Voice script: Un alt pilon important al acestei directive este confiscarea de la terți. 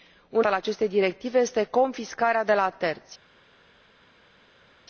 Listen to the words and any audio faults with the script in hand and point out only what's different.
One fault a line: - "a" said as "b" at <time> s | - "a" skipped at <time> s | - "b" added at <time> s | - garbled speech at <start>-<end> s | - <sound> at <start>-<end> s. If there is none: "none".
- "alt pilon important" skipped at 0.5 s